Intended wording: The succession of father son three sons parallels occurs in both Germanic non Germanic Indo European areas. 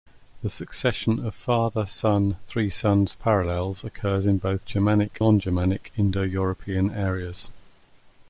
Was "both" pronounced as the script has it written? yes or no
yes